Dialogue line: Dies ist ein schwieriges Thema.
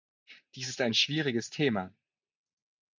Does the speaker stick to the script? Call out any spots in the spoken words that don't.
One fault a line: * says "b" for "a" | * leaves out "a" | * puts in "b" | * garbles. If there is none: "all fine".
all fine